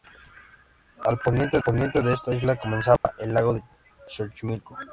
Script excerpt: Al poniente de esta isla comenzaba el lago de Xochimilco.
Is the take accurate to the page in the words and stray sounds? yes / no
no